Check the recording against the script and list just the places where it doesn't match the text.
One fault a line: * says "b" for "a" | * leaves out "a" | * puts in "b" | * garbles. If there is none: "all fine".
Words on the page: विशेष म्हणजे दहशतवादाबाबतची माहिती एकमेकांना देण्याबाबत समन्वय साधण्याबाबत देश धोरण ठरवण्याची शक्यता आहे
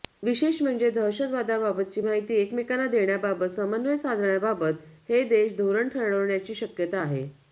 * puts in "हे"